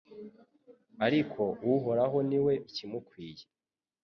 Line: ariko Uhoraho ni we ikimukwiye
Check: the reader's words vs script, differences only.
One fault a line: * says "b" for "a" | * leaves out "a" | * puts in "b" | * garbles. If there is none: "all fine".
all fine